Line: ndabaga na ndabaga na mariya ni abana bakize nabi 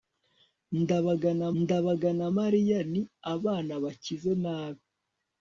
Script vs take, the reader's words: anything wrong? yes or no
no